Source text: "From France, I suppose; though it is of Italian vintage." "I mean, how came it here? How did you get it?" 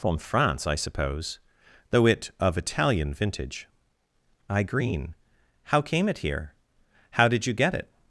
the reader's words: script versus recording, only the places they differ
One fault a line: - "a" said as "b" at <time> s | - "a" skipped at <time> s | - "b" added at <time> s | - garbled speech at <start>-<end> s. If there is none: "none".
- "is" skipped at 2.3 s
- "mean" said as "green" at 4.6 s